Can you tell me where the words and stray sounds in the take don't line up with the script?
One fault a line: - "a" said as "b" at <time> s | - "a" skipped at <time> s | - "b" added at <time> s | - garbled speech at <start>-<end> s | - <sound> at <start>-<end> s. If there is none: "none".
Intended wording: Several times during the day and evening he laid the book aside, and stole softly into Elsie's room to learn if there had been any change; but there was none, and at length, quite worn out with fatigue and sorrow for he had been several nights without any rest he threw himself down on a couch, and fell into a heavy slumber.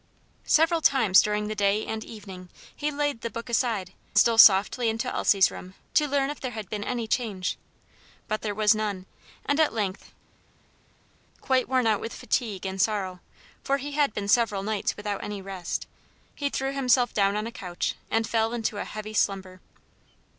- "and" skipped at 3.9 s